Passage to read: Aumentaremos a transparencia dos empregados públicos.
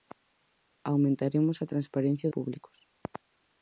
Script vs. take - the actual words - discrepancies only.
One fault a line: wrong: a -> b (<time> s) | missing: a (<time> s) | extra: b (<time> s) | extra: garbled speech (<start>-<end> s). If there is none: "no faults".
missing: dos empregados (2.3 s)